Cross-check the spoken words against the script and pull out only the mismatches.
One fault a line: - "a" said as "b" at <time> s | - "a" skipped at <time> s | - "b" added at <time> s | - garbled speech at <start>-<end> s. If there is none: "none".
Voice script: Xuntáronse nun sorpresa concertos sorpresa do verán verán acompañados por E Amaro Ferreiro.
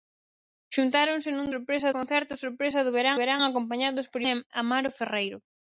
none